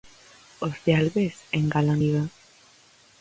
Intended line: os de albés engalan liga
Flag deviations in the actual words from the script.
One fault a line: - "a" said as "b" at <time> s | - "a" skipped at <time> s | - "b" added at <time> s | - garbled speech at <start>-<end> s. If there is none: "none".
none